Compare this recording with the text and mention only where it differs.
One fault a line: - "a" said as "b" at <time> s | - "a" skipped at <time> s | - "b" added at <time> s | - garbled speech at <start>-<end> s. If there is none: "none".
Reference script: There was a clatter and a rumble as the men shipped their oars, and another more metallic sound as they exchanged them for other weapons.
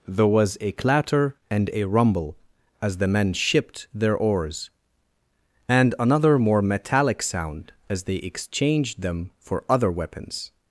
none